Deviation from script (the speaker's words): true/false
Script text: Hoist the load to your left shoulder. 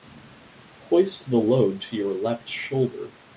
false